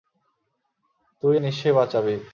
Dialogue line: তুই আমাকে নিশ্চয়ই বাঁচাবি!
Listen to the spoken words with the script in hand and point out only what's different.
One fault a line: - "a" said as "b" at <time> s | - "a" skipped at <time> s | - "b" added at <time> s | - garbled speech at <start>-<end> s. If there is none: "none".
- "আমাকে" skipped at 1.4 s